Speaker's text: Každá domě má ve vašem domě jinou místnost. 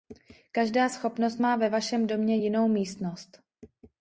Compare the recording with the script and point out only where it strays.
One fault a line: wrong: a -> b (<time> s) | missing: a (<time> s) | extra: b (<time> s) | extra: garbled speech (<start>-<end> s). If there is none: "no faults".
wrong: domě -> schopnost (0.9 s)